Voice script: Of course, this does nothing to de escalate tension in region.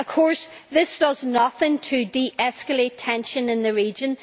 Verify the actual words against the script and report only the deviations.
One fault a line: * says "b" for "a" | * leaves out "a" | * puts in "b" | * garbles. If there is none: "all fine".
* puts in "the"